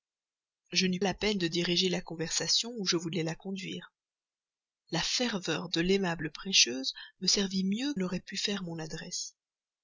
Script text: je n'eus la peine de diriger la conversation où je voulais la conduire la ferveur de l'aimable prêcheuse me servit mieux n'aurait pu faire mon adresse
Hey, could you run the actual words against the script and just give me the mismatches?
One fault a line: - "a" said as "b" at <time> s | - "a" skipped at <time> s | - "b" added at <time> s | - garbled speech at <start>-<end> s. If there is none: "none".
none